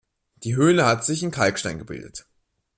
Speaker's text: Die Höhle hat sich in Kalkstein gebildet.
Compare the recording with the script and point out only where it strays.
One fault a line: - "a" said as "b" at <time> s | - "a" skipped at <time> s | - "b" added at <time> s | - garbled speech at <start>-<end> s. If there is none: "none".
none